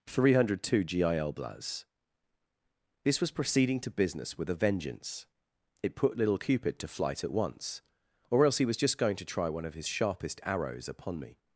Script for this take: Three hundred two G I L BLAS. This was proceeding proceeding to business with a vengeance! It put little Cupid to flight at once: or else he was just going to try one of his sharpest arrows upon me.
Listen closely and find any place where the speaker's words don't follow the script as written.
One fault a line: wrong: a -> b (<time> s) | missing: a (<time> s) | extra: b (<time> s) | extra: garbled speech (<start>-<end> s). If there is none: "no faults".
missing: proceeding (3.8 s)